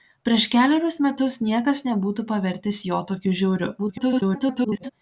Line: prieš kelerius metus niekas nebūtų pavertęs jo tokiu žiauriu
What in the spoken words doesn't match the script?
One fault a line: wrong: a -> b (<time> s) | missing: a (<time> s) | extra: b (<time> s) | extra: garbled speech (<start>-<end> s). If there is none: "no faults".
extra: garbled speech (3.8-4.9 s)